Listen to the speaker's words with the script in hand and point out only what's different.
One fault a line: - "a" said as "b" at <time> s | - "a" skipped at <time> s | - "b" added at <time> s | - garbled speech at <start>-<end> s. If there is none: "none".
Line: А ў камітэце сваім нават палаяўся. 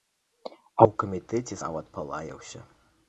- "сваім" skipped at 1.6 s